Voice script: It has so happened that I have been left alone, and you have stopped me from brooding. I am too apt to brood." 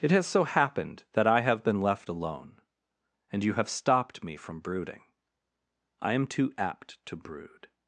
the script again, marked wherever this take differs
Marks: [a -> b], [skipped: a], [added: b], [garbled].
It has so happened that I have been left alone, and you have stopped me from brooding. I am too apt to brood."